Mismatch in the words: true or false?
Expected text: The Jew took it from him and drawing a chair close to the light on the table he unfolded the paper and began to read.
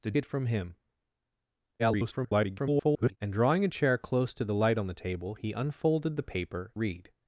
true